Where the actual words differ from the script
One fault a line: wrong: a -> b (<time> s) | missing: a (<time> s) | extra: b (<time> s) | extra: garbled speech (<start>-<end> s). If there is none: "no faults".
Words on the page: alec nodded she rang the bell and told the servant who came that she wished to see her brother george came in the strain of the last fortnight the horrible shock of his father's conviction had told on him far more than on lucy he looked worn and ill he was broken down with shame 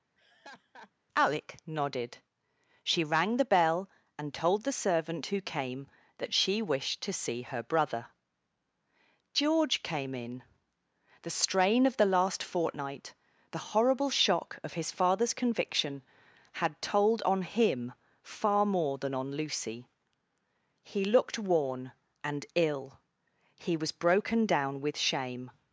no faults